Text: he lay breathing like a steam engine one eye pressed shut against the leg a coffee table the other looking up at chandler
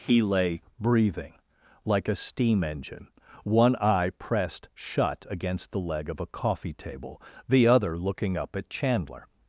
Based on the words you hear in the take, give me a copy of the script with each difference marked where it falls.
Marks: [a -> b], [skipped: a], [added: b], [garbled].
he lay breathing like a steam engine one eye pressed shut against the leg [added: of] a coffee table the other looking up at chandler